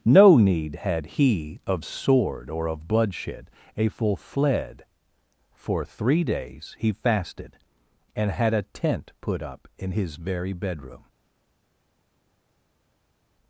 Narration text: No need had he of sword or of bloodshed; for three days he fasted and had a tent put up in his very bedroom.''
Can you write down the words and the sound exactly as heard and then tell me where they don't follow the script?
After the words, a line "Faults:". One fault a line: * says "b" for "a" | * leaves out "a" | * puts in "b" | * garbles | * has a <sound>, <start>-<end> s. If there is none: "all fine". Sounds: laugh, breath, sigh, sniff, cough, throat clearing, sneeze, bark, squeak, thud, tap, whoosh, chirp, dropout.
No need had he of sword or of bloodshed; a full fled for three days he fasted and had a tent put up in his very bedroom.''
Faults:
* puts in "a full fled"